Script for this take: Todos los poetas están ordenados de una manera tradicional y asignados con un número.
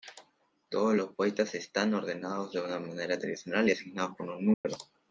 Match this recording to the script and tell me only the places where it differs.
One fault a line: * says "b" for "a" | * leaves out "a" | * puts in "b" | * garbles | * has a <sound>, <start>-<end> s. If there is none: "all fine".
* has a dropout, 4.5-4.6 s